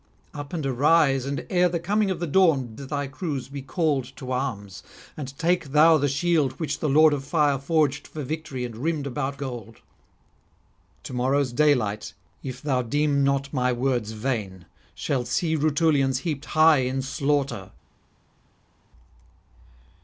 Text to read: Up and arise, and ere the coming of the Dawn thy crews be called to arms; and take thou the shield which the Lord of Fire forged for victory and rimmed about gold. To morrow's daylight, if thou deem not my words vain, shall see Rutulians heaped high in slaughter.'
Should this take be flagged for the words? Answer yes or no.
no